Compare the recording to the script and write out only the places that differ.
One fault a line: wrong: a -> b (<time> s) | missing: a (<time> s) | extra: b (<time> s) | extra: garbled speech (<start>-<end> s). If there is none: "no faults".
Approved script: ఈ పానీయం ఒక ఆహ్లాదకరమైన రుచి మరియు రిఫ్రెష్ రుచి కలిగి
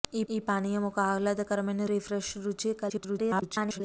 extra: ఈ (0.3 s)
missing: రుచి మరియు (1.8 s)
extra: garbled speech (2.9-3.8 s)